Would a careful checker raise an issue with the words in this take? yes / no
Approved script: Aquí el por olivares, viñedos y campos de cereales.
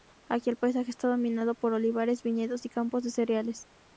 yes